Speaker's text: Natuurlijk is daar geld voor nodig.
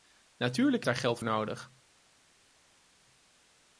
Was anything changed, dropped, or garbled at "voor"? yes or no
yes